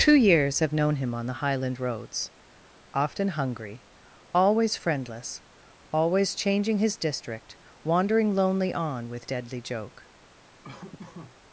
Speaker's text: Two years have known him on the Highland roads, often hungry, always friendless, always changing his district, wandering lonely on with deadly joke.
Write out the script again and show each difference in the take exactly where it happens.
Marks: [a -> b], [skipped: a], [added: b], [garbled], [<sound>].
Two years have known him on the Highland roads, often hungry, always friendless, always changing his district, wandering lonely on with deadly joke. [laugh]